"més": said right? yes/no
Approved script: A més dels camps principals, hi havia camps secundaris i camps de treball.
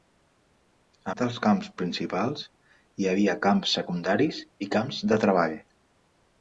no